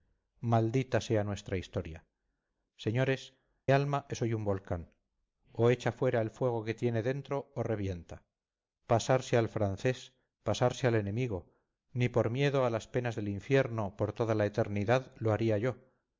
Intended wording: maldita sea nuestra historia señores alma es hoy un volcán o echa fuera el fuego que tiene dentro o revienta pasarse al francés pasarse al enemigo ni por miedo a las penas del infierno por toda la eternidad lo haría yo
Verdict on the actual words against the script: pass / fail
pass